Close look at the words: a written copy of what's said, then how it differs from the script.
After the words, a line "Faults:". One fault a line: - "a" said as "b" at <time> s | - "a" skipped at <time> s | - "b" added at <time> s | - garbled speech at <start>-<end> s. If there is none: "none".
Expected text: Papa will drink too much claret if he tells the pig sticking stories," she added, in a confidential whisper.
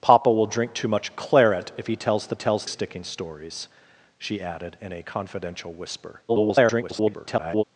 Papa will drink too much claret if he tells the tells sticking stories," she added, in a confidential whisper. [garbled]
Faults:
- "pig" said as "tells" at 2.3 s
- garbled speech at 6.3-7.6 s